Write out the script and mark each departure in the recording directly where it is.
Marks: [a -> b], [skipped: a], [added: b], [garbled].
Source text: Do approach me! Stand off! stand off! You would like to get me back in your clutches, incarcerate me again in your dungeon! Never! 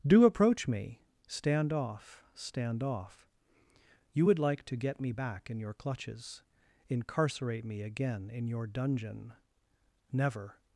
Do approach me! Stand off! stand off! You would like to get me back in your clutches, incarcerate me again in your dungeon! Never!